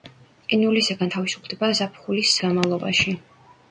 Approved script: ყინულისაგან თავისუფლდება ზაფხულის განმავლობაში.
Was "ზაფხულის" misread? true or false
false